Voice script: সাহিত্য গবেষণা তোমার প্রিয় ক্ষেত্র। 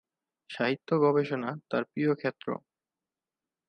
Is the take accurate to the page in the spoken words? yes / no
no